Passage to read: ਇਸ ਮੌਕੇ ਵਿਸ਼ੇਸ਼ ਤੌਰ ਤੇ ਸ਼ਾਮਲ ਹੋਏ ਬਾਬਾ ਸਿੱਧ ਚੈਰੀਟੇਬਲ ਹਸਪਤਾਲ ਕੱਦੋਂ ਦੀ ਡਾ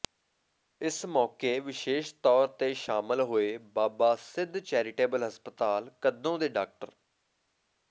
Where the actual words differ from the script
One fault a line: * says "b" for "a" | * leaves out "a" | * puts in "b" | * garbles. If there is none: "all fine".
* says "ਦੇ" for "ਦੀ"